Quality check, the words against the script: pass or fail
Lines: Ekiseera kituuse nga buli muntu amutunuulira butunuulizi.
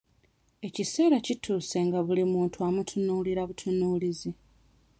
pass